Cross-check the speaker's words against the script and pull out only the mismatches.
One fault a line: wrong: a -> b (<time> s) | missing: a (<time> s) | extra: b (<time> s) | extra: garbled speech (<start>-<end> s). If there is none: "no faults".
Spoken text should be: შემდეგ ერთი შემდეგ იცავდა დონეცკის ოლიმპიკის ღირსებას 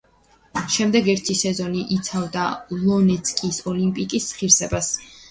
wrong: შემდეგ -> სეზონი (1.4 s)